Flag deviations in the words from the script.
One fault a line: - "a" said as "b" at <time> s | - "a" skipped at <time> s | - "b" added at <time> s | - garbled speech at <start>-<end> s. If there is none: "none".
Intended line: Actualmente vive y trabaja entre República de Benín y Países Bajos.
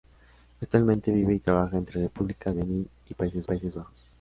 - "de" skipped at 2.5 s
- "Países" added at 3.4 s